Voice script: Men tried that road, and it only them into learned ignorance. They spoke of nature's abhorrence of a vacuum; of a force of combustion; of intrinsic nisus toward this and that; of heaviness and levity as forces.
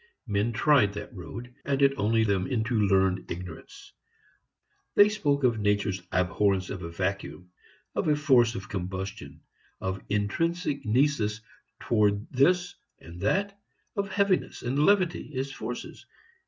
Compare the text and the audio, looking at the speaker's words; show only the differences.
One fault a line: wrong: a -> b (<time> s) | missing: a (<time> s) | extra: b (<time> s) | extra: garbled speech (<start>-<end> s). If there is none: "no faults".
no faults